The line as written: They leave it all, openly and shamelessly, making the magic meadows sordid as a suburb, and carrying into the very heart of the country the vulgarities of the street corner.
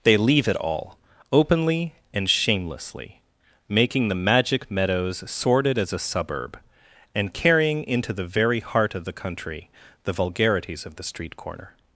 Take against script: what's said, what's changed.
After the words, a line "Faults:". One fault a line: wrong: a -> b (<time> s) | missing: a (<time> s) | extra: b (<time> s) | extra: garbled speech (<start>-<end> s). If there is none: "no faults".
They leave it all, openly and shamelessly, making the magic meadows sordid as a suburb, and carrying into the very heart of the country the vulgarities of the street corner.
Faults:
no faults